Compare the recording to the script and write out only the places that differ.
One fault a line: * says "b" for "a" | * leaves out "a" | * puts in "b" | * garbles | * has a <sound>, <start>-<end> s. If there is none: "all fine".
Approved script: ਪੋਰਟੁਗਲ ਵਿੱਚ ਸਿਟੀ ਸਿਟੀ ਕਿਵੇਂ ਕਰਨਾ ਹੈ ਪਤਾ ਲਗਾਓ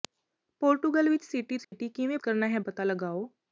* has a dropout, 1.6-1.7 s